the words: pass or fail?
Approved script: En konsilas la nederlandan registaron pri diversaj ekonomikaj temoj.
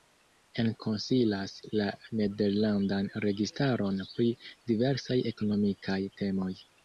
pass